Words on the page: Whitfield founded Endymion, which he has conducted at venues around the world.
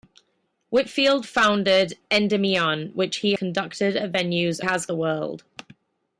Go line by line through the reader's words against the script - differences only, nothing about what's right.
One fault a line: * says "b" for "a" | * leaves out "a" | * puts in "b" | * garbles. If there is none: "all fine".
* leaves out "has"
* says "has" for "around"